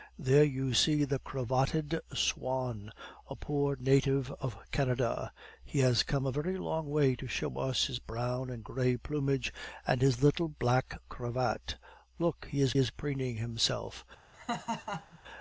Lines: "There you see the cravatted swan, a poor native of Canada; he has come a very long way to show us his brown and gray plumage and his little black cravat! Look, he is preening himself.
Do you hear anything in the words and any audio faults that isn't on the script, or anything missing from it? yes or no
yes